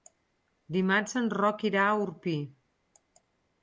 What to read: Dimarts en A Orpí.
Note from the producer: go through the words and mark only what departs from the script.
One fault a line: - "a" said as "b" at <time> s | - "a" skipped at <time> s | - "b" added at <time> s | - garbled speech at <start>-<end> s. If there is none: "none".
- "Roc irà" added at 1.4 s